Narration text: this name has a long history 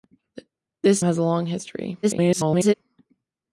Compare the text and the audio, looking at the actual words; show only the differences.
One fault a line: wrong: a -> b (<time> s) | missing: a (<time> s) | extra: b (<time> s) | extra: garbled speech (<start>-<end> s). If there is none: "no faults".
missing: name (1.1 s)
extra: garbled speech (2.0-2.7 s)